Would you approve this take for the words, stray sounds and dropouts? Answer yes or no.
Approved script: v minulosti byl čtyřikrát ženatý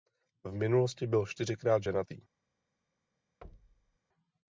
no